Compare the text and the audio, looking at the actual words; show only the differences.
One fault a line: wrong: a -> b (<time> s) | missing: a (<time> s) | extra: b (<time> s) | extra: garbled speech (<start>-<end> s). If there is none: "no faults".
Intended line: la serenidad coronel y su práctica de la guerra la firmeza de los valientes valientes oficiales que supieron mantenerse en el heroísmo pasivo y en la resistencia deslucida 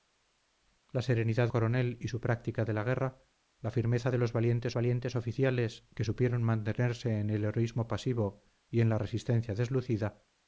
no faults